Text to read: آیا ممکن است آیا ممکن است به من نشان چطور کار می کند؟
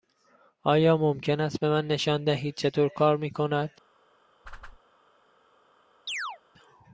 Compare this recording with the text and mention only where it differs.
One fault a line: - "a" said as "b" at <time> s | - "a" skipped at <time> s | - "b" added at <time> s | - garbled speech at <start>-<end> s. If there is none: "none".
- "آیا ممکن است" skipped at 1.6 s
- "دهید" added at 2.2 s